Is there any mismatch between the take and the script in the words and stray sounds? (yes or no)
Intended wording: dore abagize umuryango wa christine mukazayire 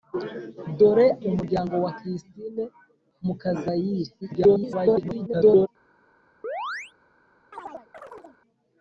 yes